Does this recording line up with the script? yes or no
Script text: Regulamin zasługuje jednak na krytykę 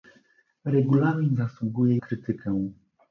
no